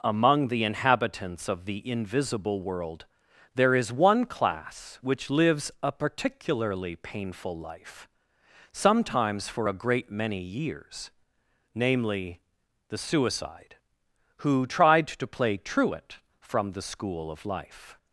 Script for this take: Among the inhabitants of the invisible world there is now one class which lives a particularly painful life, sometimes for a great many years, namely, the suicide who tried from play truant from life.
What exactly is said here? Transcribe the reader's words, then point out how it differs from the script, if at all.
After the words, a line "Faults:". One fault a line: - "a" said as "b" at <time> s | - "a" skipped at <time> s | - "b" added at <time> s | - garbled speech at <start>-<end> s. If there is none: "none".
Among the inhabitants of the invisible world there is one class which lives a particularly painful life, sometimes for a great many years, namely, the suicide who tried to play truant from the school of life.
Faults:
- "now" skipped at 3.9 s
- "from" said as "to" at 15.1 s
- "the school of" added at 16.7 s